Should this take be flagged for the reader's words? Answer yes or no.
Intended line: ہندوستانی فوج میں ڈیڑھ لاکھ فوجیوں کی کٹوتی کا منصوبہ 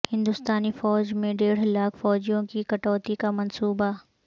no